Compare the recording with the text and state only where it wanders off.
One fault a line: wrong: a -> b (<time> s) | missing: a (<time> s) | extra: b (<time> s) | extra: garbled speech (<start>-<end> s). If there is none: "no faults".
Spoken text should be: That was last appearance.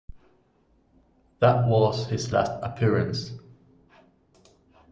extra: his (2.1 s)